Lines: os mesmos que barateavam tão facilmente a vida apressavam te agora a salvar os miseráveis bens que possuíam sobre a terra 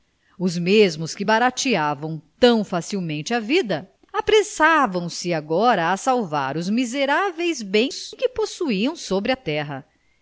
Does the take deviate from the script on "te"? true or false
true